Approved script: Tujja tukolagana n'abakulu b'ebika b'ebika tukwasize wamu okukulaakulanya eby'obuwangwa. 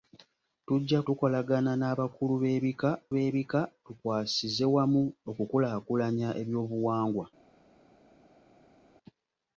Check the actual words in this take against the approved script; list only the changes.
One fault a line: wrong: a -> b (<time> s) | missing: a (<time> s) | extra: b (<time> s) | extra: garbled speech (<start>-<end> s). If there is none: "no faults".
no faults